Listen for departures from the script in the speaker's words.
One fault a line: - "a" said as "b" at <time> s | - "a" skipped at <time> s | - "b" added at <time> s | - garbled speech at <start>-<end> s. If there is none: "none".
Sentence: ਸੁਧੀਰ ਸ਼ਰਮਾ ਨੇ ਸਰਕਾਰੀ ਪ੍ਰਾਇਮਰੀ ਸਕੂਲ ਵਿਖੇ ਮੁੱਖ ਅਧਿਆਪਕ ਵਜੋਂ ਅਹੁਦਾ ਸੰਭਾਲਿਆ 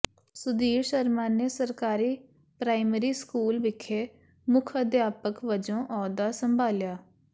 none